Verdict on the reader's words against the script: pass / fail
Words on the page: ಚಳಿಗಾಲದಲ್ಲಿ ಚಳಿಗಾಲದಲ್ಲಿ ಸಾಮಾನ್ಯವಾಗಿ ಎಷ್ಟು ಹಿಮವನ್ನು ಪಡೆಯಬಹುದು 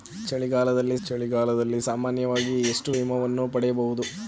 pass